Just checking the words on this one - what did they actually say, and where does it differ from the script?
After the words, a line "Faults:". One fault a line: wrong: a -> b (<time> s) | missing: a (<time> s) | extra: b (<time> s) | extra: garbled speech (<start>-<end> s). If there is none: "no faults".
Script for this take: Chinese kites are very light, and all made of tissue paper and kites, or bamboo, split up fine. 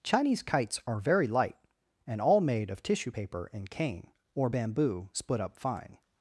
Chinese kites are very light, and all made of tissue paper and cane, or bamboo, split up fine.
Faults:
wrong: kites -> cane (3.7 s)